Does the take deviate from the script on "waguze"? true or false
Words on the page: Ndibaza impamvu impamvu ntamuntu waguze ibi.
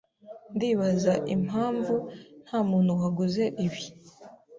false